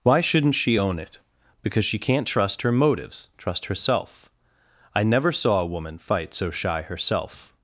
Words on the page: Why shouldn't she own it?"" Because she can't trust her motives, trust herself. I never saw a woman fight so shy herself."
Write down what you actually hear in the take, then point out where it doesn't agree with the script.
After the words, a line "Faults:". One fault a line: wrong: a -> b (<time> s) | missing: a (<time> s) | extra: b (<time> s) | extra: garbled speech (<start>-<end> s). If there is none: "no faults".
Why shouldn't she own it?"" Because she can't trust her motives, trust herself. I never saw a woman fight so shy herself."
Faults:
no faults